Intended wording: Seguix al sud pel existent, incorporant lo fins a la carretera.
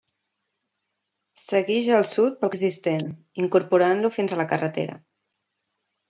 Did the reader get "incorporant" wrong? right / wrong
right